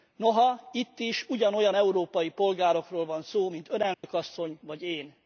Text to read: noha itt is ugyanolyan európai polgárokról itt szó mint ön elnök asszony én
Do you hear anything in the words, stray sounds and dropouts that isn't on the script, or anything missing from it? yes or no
yes